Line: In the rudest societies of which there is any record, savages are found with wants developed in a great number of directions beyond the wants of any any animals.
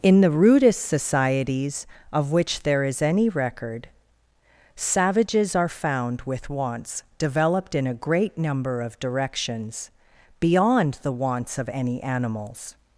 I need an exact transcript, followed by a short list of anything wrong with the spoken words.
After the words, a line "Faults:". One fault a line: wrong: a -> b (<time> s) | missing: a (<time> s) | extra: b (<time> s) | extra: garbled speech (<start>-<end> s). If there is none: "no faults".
In the rudest societies of which there is any record, savages are found with wants developed in a great number of directions beyond the wants of any animals.
Faults:
missing: any (12.0 s)